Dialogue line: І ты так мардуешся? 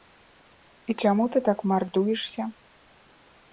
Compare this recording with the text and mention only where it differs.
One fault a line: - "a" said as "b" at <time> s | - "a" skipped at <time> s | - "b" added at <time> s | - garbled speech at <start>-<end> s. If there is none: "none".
- "чаму" added at 1.0 s